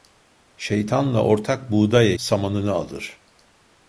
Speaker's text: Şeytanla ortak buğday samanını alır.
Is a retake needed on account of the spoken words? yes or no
no